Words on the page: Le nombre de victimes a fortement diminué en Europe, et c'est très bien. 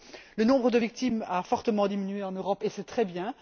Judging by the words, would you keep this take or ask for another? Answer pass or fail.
pass